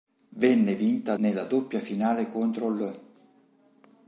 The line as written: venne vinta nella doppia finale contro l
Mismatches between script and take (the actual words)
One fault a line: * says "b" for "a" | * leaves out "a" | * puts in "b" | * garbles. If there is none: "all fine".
all fine